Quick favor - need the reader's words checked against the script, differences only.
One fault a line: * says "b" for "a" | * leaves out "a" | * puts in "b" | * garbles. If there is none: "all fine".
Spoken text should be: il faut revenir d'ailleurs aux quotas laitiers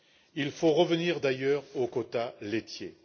all fine